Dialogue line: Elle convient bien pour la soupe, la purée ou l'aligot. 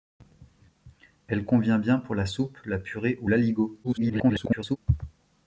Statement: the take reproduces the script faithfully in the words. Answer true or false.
false